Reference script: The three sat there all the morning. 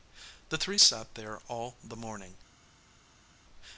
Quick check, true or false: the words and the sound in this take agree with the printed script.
true